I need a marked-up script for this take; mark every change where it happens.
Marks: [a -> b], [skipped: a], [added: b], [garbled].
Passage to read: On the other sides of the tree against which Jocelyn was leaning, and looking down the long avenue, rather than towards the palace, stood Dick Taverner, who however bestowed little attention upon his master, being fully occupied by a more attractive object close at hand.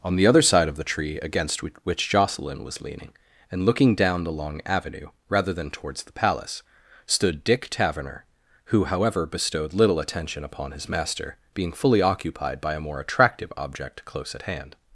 On the other [sides -> side] of the tree against which Jocelyn was leaning, and looking down the long avenue, rather than towards the palace, stood Dick Taverner, who however bestowed little attention upon his master, being fully occupied by a more attractive object close at hand.